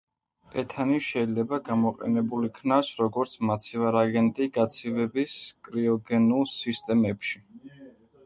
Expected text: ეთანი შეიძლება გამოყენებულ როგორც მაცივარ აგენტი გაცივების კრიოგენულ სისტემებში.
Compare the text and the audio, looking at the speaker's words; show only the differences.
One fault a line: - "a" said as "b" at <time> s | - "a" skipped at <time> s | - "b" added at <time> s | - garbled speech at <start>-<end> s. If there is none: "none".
- "იქნას" added at 2.5 s